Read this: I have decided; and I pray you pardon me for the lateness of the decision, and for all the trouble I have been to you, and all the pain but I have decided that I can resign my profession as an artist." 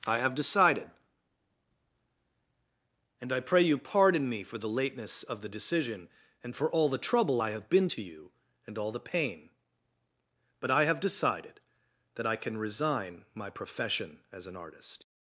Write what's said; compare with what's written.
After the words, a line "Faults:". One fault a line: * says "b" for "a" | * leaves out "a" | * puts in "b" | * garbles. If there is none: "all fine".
I have decided; and I pray you pardon me for the lateness of the decision, and for all the trouble I have been to you, and all the pain but I have decided that I can resign my profession as an artist."
Faults:
all fine